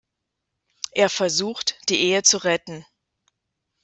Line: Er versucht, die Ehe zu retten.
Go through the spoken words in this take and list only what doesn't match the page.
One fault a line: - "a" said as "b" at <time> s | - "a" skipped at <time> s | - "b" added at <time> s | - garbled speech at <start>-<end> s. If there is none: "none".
none